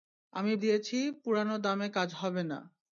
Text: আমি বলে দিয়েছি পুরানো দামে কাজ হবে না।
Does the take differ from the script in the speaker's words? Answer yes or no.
yes